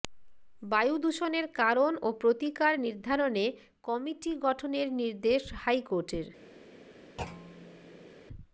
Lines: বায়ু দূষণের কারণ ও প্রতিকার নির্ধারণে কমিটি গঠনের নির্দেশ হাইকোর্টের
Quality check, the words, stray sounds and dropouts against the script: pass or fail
fail